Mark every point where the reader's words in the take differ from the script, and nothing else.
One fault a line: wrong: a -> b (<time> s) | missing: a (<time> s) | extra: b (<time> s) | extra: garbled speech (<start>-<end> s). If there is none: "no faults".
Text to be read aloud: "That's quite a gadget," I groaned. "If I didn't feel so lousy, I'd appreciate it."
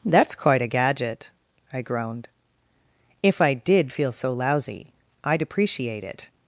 wrong: didn't -> did (3.5 s)